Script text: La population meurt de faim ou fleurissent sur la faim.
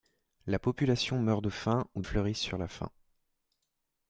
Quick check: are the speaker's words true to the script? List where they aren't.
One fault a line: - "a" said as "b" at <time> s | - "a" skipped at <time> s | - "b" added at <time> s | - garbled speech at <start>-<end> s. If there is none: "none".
none